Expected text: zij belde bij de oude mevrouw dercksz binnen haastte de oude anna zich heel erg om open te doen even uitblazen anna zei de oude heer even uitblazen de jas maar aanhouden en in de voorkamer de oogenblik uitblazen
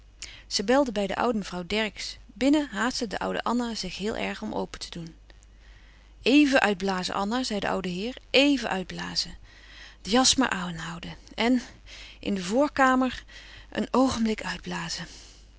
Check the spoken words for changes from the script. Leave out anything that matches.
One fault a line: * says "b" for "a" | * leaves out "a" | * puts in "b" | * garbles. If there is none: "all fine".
* says "een" for "de"